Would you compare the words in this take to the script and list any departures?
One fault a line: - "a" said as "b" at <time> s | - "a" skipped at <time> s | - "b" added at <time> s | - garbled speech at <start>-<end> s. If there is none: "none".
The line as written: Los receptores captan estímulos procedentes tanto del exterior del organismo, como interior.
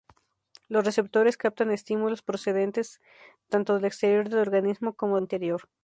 none